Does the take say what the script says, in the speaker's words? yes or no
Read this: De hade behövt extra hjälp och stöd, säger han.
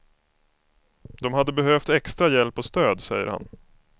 yes